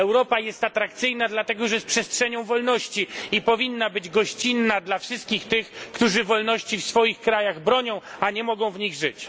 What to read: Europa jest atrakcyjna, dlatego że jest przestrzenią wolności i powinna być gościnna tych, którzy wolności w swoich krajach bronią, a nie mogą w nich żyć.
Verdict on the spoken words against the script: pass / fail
fail